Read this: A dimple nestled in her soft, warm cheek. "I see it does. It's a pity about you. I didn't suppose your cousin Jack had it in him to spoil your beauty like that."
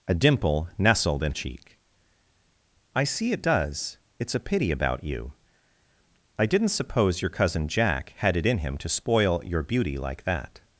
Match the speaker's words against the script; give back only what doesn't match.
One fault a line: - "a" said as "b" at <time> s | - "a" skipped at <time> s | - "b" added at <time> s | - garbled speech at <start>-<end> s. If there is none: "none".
- "her soft warm" skipped at 1.3 s